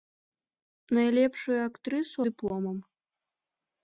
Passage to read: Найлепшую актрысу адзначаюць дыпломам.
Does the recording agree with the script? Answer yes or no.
no